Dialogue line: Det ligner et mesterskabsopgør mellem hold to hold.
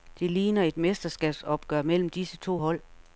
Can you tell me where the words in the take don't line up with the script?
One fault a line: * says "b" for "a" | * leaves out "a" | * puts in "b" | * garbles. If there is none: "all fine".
* says "disse" for "hold"